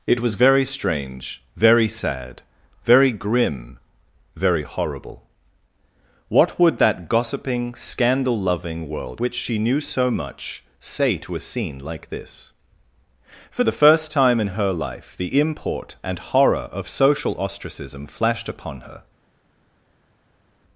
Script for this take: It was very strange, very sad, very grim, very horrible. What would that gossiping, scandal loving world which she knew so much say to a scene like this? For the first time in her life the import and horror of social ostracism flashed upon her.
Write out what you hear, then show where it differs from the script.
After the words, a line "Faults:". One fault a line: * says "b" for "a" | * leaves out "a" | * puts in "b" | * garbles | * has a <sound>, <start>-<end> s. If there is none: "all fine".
It was very strange, very sad, very grim, very horrible. What would that gossiping, scandal loving world which she knew so much say to a scene like this? For the first time in her life the import and horror of social ostracism flashed upon her.
Faults:
all fine